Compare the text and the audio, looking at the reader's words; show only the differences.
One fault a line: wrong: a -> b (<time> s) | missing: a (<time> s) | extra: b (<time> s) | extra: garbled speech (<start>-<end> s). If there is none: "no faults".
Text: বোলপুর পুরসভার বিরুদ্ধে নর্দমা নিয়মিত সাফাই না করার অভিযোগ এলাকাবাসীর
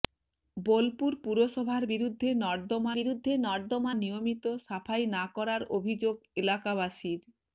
extra: বিরুদ্ধে নর্দমা (3.0 s)